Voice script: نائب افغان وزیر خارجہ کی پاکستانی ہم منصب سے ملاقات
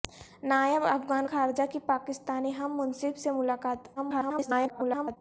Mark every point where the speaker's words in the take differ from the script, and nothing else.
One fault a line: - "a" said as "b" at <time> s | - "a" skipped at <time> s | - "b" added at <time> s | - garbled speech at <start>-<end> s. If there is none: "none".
- "وزیر" skipped at 1.3 s
- garbled speech at 4.0-5.2 s